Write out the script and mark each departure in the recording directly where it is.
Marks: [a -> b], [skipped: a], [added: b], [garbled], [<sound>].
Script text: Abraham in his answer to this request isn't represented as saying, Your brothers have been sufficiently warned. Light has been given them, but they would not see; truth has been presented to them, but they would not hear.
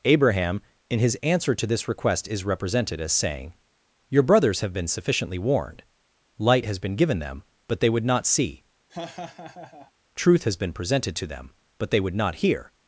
Abraham in his answer to this request [isn't -> is] represented as saying, Your brothers have been sufficiently warned. Light has been given them, but they would not see; [laugh] truth has been presented to them, but they would not hear.